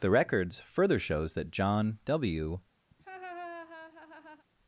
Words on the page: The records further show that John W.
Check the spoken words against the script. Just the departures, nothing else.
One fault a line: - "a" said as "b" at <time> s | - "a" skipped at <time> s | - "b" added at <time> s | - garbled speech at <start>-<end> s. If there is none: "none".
- "show" said as "shows" at 1.0 s